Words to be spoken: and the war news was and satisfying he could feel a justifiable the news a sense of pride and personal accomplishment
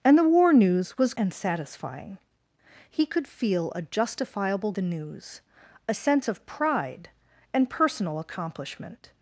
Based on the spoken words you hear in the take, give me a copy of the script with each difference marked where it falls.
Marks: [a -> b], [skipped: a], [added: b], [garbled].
and the war news was and satisfying he could feel a justifiable the news a sense of pride and personal accomplishment